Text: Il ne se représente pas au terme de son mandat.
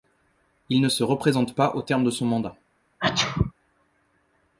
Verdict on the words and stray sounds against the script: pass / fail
fail